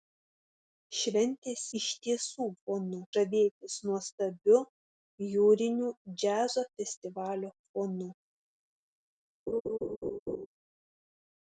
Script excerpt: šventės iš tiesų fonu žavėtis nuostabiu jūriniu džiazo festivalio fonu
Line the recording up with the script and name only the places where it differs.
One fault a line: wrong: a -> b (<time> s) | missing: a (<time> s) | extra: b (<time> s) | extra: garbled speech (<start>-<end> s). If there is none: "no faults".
no faults